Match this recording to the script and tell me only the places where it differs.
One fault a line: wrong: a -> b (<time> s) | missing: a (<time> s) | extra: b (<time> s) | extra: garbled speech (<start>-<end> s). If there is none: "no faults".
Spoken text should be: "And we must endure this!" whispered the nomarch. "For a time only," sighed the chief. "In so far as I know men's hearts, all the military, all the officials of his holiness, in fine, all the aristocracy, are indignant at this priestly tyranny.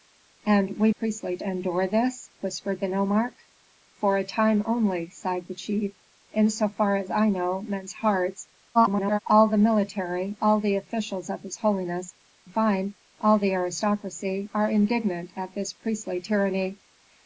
wrong: must -> priestly (0.9 s)
extra: garbled speech (8.7-9.2 s)
missing: in (12.2 s)